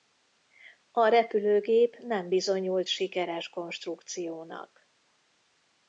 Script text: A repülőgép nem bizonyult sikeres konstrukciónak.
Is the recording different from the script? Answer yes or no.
no